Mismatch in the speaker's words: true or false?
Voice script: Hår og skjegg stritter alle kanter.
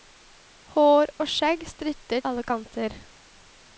false